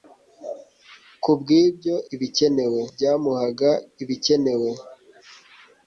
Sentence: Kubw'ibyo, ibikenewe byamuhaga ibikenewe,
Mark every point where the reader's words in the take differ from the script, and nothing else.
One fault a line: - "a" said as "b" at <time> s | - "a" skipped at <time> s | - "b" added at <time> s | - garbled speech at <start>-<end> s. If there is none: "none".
none